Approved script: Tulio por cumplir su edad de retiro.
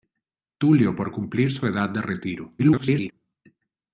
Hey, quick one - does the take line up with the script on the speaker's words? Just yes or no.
no